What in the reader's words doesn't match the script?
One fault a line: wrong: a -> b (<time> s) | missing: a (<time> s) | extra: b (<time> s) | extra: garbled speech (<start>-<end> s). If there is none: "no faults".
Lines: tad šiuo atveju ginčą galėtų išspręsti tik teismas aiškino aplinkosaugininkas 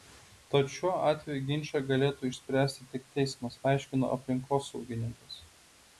no faults